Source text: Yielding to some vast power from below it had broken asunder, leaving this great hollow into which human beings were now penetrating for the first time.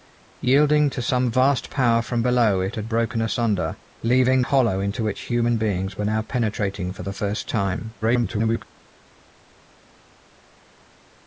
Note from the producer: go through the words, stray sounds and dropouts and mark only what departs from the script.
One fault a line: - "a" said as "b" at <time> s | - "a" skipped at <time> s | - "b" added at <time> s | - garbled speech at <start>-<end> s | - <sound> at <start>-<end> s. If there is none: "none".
- "this great" skipped at 4.4 s
- garbled speech at 8.0-8.6 s